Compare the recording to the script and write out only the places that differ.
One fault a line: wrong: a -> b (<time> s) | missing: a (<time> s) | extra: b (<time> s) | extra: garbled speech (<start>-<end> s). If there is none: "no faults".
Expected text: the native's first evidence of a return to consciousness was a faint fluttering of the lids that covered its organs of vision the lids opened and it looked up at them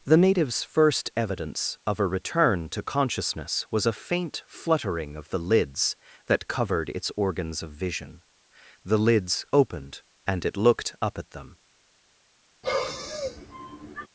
no faults